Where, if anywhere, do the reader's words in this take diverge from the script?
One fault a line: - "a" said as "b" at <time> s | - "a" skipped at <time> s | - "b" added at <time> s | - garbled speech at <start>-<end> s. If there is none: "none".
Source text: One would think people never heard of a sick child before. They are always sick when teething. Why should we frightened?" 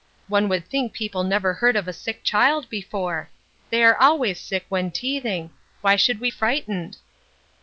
none